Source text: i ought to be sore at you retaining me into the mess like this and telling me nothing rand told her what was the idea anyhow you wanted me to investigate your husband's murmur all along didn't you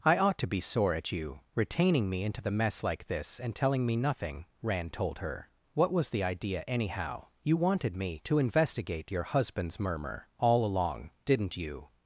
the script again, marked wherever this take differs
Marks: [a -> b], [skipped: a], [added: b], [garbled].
i ought to be sore at you retaining me into the mess like this and telling me nothing rand told her what was the idea anyhow you wanted me to investigate your husband's murmur all along didn't you